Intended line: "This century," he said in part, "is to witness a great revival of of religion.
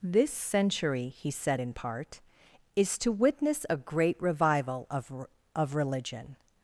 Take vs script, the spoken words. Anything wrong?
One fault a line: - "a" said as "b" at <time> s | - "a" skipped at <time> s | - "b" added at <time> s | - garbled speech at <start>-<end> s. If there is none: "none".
none